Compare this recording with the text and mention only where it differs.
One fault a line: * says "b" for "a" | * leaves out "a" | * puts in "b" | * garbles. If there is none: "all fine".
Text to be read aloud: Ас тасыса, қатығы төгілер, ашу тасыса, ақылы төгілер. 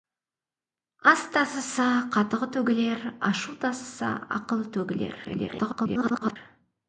* garbles